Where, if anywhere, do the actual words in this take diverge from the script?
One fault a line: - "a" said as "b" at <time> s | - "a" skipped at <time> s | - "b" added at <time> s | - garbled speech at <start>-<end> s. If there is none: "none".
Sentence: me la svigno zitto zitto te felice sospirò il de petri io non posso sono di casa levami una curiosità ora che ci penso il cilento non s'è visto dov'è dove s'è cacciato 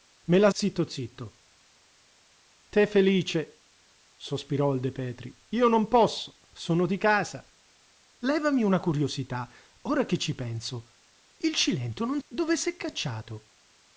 - "svigno" skipped at 0.5 s
- "s'è visto dov'è" skipped at 12.2 s